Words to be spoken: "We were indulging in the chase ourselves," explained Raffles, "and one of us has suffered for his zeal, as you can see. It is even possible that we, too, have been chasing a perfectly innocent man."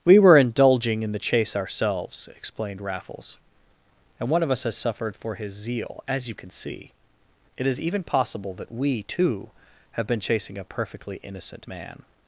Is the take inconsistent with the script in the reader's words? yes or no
no